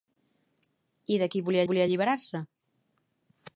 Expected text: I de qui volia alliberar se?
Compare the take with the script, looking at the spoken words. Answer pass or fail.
fail